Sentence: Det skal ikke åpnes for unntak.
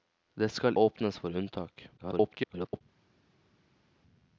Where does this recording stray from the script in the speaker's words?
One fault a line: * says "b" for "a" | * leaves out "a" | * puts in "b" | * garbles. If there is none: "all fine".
* leaves out "ikke"
* garbles